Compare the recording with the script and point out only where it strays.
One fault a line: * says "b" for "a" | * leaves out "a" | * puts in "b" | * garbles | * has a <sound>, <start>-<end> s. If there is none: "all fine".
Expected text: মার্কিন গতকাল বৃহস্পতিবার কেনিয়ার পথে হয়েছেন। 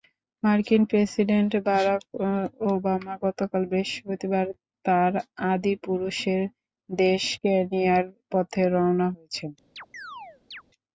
* puts in "প্রেসিডেন্ট বারাক ওবামা"
* puts in "তাঁর আদিপুরুষের দেশ"
* puts in "রওনা"
* has a chirp, 9.8-10.6 s